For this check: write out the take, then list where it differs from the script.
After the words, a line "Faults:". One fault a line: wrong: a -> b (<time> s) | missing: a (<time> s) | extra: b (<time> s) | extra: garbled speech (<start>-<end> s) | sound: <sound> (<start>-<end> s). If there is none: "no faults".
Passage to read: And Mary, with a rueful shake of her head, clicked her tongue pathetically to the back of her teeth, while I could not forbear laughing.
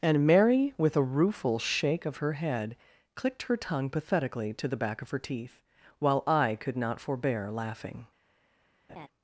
And Mary, with a rueful shake of her head, clicked her tongue pathetically to the back of her teeth, while I could not forbear laughing.
Faults:
sound: laugh (8.9-9.1 s)